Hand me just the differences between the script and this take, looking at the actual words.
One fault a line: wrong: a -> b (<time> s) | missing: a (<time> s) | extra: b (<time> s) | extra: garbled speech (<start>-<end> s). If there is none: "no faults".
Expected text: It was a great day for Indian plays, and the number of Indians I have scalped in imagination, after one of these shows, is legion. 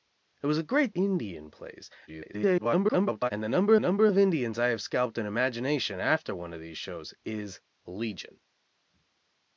missing: day for (0.9 s)
extra: garbled speech (2.1-3.3 s)
extra: number (3.8 s)